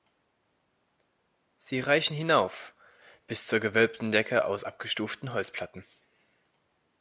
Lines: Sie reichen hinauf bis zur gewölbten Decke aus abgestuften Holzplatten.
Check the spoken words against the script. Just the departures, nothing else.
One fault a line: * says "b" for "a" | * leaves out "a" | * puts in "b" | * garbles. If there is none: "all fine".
all fine